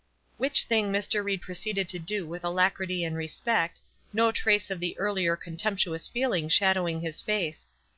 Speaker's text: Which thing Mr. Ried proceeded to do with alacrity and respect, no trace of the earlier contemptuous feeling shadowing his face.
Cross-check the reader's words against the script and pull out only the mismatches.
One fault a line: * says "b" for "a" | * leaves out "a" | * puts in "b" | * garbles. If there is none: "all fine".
all fine